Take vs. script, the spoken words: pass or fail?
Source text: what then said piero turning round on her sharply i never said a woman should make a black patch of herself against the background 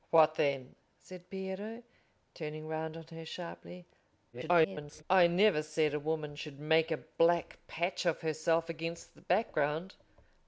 fail